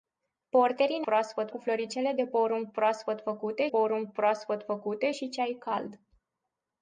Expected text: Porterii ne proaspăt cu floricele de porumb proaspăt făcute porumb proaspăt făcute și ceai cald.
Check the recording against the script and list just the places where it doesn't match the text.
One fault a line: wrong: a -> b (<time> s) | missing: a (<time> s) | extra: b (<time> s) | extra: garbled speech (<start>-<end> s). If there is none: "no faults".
no faults